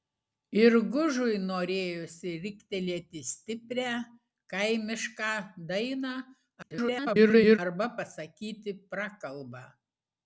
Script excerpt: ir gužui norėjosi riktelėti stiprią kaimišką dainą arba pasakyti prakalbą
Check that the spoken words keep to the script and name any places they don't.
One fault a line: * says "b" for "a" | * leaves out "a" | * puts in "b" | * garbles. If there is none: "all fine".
* garbles